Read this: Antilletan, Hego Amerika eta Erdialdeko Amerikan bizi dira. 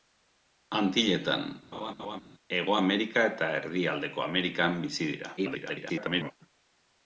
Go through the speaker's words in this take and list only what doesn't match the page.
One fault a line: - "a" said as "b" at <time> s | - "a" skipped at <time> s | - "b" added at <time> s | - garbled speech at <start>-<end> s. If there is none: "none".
- garbled speech at 5.4-6.3 s